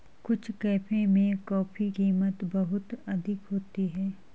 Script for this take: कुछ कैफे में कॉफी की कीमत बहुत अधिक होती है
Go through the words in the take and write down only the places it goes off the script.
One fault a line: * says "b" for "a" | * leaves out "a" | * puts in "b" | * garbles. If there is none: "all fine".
* leaves out "की"